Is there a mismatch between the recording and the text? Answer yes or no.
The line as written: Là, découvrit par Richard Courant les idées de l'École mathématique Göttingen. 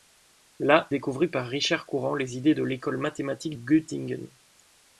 no